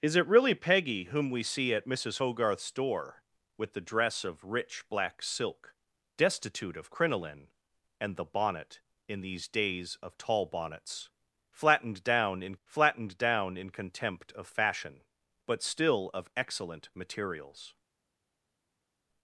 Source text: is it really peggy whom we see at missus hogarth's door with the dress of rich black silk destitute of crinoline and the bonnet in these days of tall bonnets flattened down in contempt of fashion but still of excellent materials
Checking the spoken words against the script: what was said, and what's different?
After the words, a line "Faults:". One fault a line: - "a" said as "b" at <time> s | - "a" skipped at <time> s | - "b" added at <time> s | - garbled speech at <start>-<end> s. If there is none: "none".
is it really peggy whom we see at missus hogarth's door with the dress of rich black silk destitute of crinoline and the bonnet in these days of tall bonnets flattened down in flattened down in contempt of fashion but still of excellent materials
Faults:
- "flattened down in" added at 12.6 s